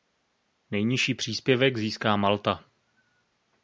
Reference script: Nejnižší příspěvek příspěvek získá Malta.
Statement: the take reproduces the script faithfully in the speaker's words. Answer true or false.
false